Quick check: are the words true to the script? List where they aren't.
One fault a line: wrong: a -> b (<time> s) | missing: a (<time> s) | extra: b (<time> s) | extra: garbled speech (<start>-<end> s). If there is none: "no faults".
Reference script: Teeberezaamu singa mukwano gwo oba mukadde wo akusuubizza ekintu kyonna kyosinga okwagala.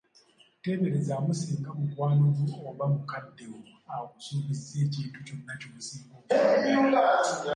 no faults